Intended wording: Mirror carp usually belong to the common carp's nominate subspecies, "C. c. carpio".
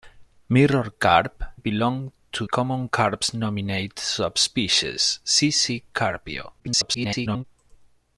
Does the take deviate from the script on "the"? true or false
true